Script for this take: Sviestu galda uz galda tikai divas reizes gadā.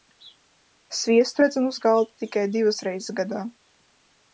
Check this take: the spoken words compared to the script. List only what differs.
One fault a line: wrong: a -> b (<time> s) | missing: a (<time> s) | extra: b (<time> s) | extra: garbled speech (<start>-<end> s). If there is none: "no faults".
wrong: galda -> redzam (1.4 s)